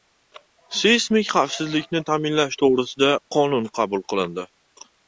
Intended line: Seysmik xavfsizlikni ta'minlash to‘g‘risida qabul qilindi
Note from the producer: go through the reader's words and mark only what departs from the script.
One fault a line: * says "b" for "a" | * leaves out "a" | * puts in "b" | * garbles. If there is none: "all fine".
* puts in "qonun"